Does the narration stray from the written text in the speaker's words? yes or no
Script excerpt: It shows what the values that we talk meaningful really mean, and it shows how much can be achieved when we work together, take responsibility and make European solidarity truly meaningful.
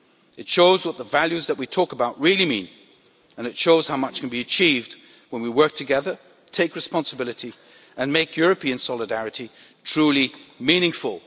yes